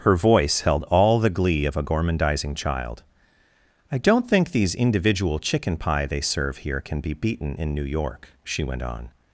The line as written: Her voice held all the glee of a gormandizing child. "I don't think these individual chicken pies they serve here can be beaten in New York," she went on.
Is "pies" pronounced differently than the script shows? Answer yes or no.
yes